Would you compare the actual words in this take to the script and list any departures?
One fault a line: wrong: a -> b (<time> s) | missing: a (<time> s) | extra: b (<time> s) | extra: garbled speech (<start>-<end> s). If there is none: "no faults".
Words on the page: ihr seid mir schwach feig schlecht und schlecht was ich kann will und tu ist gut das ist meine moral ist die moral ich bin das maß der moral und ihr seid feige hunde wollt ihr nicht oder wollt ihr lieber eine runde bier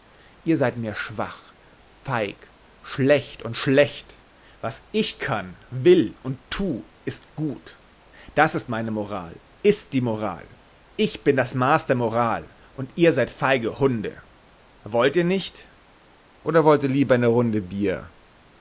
no faults